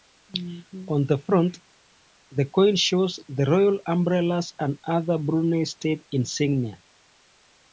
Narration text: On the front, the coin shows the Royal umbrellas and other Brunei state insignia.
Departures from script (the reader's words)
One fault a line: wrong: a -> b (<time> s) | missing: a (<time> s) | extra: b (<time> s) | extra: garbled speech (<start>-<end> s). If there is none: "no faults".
no faults